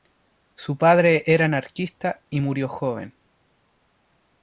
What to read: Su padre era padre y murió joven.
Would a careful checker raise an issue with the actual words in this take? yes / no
yes